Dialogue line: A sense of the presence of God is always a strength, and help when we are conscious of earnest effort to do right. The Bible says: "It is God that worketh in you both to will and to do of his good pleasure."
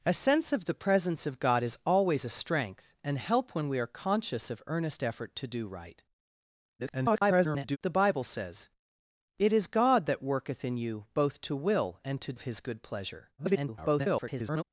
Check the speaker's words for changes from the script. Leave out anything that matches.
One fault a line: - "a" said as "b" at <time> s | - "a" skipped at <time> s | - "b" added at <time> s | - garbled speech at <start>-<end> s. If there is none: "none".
- garbled speech at 6.8-7.8 s
- "do" skipped at 12.3 s
- garbled speech at 13.4-14.6 s